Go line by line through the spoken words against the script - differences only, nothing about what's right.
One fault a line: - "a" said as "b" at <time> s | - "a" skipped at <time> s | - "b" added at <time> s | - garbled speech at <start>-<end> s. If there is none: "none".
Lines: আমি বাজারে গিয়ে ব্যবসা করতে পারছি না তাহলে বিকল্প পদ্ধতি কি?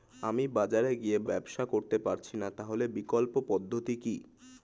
none